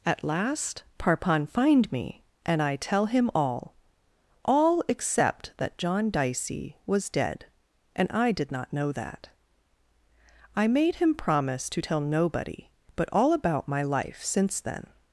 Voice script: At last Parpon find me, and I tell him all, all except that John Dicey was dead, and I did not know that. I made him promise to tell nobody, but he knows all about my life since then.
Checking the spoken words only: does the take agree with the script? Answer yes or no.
no